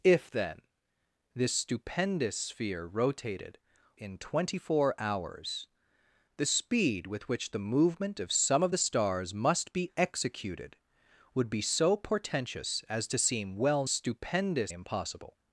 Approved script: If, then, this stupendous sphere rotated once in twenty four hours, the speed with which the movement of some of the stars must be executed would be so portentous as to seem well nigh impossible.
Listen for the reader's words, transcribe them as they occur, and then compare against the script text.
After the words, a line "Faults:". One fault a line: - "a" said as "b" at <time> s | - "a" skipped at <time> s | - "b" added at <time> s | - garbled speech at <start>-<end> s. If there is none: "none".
If, then, this stupendous sphere rotated in twenty four hours, the speed with which the movement of some of the stars must be executed would be so portentous as to seem well stupendous impossible.
Faults:
- "once" skipped at 3.6 s
- "nigh" said as "stupendous" at 13.9 s